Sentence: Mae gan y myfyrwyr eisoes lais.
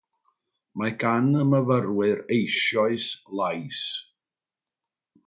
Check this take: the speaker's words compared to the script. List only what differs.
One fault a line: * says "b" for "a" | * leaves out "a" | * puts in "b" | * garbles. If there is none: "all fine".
all fine